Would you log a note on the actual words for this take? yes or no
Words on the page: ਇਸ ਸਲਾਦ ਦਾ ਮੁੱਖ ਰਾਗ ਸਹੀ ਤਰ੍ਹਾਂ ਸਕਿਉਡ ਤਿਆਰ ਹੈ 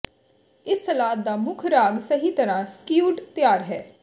no